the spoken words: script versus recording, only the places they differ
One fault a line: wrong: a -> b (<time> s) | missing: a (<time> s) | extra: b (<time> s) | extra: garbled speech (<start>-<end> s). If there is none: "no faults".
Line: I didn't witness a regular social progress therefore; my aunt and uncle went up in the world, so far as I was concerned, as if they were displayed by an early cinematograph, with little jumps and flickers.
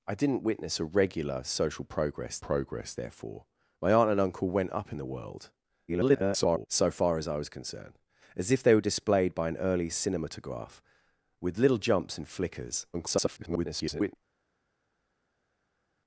extra: progress (2.4 s)
extra: garbled speech (5.9-6.7 s)
extra: garbled speech (12.9-14.2 s)